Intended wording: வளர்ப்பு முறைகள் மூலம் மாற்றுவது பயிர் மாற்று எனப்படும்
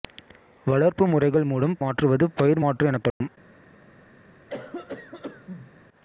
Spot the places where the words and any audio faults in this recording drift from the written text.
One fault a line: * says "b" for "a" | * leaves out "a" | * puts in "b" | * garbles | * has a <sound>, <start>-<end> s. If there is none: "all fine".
* has a dropout, 3.1-3.2 s
* has a cough, 4.5-5.7 s